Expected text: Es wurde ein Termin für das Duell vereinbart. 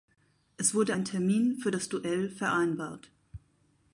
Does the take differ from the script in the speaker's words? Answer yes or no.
no